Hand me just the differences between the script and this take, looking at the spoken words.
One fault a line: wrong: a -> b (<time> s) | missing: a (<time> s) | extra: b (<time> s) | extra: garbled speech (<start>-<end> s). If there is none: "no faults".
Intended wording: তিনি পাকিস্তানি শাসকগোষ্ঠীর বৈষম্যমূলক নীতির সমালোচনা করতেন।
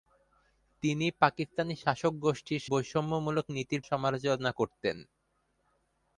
no faults